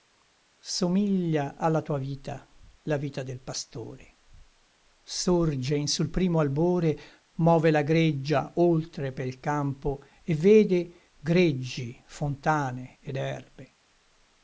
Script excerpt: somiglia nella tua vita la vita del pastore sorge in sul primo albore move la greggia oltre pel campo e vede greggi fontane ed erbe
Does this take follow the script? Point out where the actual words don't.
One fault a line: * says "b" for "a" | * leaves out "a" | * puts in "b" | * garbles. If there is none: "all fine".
* says "alla" for "nella"